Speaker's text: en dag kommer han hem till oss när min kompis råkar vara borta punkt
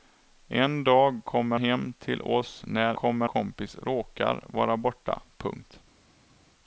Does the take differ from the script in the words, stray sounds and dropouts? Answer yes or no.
yes